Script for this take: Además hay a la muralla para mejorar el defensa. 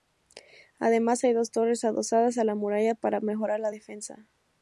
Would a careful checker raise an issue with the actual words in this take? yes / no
yes